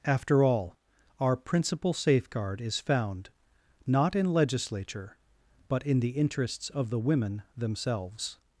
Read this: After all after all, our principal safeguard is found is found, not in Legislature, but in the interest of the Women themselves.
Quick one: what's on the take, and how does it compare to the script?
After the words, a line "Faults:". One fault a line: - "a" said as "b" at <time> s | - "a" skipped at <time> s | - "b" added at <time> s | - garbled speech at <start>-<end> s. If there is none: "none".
After all, our principal safeguard is found, not in Legislature, but in the interests of the Women themselves.
Faults:
- "after all" skipped at 0.8 s
- "is found" skipped at 3.3 s
- "interest" said as "interests" at 6.1 s